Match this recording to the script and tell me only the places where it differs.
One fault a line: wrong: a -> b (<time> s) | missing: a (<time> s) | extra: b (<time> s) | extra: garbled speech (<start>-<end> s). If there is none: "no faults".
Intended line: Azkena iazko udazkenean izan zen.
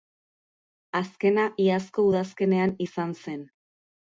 no faults